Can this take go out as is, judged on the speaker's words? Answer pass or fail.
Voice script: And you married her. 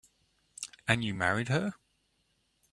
pass